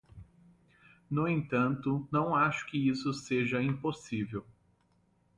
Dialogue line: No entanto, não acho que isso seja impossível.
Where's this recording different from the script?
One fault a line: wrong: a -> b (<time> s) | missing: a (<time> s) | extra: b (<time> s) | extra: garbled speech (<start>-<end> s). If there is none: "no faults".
no faults